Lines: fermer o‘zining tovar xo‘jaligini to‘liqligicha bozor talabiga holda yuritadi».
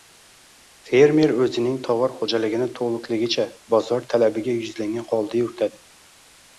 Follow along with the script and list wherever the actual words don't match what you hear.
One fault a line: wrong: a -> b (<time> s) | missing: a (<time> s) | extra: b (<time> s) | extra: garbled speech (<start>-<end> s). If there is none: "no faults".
extra: yuzlangan (4.6 s)